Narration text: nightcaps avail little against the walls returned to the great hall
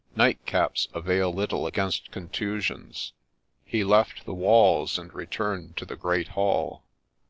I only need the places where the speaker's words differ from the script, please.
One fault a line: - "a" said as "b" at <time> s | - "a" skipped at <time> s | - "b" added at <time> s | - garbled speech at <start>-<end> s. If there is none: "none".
- "contusions he left" added at 2.1 s
- "and" added at 5.0 s